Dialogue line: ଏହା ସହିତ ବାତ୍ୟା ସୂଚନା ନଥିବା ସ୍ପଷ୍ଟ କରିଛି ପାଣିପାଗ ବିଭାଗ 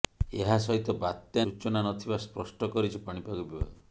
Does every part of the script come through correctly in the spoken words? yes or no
yes